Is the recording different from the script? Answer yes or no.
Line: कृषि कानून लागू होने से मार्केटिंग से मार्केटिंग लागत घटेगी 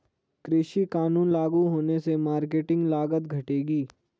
yes